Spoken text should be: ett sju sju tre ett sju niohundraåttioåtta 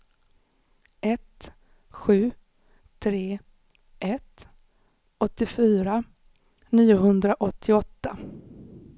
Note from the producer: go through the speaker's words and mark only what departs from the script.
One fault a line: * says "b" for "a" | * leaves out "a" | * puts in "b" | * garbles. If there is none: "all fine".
* leaves out "sju"
* says "åttiofyra" for "sju"